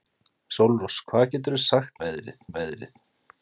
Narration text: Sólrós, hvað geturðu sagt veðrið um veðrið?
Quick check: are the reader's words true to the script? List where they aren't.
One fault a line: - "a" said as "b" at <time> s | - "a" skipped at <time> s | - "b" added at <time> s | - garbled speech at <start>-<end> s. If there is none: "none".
none